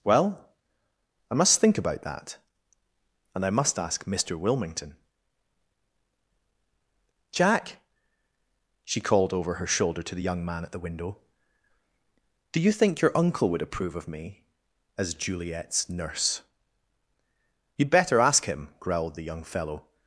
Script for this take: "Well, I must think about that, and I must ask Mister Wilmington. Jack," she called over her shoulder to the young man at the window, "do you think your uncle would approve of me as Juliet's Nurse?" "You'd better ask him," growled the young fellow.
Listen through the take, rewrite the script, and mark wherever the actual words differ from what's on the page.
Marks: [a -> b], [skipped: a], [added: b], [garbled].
"Well, I must think about that, and I must ask Mister Wilmington. Jack," she called over her shoulder to the young man at the window, "do you think your uncle would approve of me as Juliet's Nurse?" "You'd better ask him," growled the young fellow.